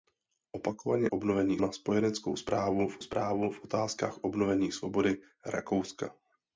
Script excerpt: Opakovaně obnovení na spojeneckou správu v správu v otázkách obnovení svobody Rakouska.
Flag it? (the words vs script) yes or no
no